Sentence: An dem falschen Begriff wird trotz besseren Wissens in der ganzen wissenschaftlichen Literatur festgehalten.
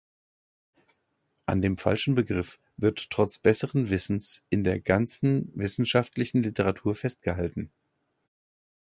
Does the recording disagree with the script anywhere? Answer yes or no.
no